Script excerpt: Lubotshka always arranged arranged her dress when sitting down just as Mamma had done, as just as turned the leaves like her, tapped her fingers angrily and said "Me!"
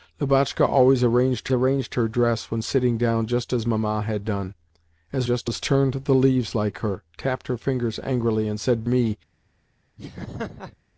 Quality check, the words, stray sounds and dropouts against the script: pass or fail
fail